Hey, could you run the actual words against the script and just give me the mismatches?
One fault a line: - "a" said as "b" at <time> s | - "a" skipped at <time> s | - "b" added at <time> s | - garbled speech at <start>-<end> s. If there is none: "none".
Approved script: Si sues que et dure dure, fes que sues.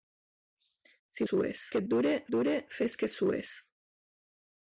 none